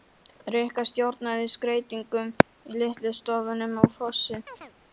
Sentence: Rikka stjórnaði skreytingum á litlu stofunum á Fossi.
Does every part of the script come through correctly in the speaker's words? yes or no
no